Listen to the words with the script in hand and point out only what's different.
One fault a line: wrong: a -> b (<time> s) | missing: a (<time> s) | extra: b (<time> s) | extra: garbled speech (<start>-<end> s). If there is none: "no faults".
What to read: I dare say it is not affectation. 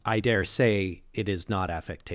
no faults